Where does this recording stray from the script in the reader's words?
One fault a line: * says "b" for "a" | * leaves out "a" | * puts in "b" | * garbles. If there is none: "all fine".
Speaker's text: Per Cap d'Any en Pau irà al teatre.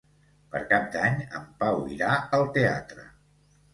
all fine